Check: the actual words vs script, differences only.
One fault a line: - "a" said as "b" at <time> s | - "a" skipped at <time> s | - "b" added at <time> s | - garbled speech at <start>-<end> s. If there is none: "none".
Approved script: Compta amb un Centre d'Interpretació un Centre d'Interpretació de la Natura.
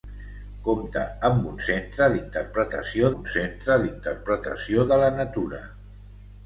none